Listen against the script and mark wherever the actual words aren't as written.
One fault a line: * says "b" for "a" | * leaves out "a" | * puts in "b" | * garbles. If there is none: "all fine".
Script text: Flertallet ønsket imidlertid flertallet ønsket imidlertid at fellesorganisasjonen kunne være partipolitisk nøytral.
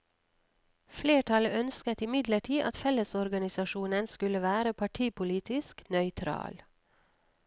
* leaves out "flertallet ønsket imidlertid"
* says "skulle" for "kunne"